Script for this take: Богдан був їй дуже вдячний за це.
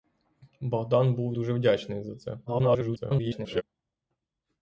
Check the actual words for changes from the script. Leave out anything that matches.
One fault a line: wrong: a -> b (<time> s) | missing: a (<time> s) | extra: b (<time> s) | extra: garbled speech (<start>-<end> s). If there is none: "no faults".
missing: їй (1.4 s)
extra: garbled speech (2.5-3.6 s)